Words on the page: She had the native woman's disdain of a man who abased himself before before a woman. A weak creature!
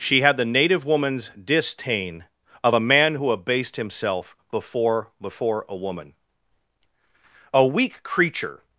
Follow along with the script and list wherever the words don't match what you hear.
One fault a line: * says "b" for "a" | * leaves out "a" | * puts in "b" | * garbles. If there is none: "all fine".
all fine